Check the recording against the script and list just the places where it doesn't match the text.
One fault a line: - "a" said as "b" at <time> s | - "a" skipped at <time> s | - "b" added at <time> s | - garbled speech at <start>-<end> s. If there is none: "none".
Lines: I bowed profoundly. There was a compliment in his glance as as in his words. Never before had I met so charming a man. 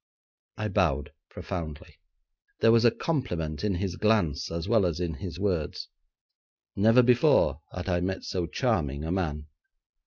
- "well" added at 4.7 s